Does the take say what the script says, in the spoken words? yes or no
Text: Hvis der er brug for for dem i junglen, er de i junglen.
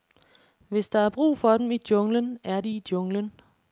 no